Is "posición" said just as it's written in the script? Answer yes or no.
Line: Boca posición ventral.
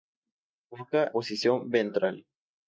yes